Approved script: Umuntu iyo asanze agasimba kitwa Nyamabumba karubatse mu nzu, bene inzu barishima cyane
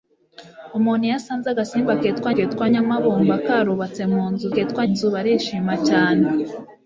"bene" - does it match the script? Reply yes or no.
no